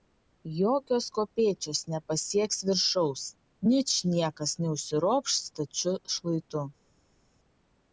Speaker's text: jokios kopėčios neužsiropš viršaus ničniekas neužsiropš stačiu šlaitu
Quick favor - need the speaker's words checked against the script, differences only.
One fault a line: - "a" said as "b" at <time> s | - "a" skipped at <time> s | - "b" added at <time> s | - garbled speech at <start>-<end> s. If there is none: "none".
- "neužsiropš" said as "nepasieks" at 1.9 s